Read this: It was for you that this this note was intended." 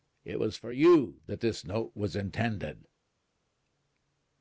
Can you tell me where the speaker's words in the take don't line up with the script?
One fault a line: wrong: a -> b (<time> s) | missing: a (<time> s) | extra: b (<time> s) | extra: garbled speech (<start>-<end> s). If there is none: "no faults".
missing: this (1.7 s)